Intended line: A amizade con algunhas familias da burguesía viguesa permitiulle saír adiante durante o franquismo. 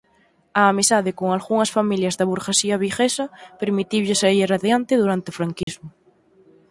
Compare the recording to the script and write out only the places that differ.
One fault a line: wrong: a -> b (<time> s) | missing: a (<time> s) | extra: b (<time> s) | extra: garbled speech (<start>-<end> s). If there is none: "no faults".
no faults